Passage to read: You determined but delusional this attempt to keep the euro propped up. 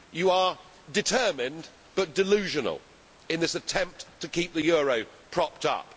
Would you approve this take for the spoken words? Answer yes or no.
no